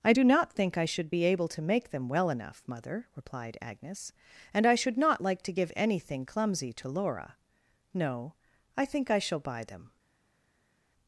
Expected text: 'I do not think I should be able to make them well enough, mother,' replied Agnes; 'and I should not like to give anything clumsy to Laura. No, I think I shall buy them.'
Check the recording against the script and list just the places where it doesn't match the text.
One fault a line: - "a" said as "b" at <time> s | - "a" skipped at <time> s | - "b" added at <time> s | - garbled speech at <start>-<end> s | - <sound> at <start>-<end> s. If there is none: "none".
none